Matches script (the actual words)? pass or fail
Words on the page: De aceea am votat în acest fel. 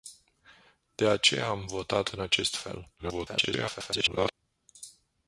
fail